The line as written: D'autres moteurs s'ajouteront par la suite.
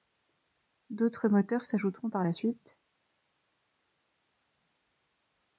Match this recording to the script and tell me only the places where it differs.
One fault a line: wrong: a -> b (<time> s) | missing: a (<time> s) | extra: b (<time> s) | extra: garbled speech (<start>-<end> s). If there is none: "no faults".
no faults